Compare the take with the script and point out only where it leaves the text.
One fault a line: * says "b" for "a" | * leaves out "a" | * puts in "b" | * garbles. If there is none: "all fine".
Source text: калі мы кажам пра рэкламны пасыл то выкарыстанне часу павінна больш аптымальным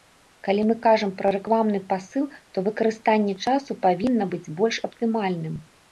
* puts in "быць"